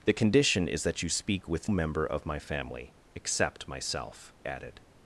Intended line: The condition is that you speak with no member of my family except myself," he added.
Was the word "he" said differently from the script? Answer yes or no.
yes